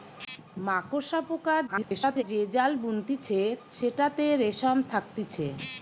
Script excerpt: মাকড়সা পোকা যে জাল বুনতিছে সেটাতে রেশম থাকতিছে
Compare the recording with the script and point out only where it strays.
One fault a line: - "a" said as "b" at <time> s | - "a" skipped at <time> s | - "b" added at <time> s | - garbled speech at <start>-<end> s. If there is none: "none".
- garbled speech at 1.7-2.2 s